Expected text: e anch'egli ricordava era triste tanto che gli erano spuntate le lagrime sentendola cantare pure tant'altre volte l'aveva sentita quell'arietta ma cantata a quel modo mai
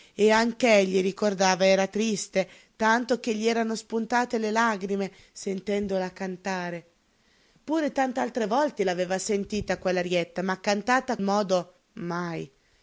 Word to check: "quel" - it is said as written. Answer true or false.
false